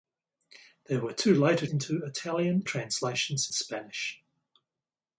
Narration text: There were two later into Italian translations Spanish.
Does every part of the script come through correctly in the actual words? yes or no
yes